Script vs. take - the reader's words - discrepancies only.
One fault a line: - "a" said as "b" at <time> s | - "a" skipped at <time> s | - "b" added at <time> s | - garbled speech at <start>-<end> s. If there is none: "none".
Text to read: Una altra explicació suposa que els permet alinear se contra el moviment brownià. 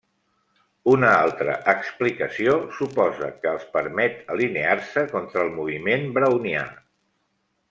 none